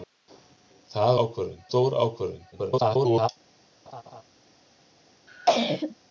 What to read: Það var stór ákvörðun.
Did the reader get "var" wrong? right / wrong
wrong